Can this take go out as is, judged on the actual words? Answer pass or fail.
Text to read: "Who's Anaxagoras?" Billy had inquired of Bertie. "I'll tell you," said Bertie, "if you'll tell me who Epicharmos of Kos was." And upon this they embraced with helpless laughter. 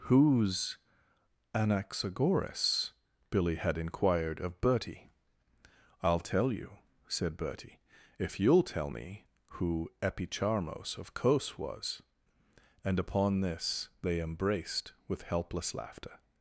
pass